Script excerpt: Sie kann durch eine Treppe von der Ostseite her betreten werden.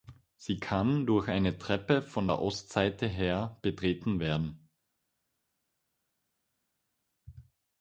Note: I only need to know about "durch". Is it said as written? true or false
true